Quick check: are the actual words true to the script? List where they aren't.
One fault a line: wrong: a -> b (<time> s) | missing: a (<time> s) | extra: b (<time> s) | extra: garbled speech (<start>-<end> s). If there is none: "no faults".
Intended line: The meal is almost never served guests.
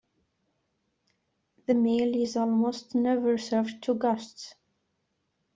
extra: to (3.8 s)